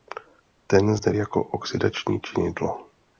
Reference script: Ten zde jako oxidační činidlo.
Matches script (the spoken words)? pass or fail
pass